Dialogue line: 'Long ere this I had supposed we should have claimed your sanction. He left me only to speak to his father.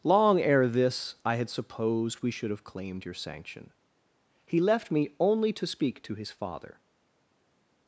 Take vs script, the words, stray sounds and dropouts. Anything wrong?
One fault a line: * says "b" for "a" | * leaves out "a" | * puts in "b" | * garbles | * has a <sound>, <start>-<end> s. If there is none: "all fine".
all fine